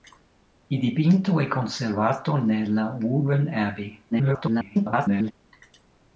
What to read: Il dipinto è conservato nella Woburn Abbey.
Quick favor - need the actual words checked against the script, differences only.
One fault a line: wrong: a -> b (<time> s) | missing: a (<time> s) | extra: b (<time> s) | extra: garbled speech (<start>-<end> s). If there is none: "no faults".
extra: garbled speech (4.1-5.3 s)